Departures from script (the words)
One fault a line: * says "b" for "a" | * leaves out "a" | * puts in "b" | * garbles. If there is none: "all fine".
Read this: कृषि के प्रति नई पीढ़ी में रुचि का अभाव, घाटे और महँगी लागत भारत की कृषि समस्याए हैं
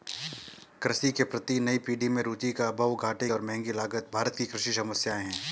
all fine